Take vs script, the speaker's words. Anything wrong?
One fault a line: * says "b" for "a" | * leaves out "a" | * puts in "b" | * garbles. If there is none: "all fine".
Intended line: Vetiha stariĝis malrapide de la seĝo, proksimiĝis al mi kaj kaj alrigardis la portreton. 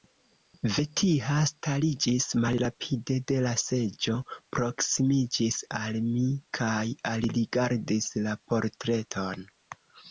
* leaves out "kaj"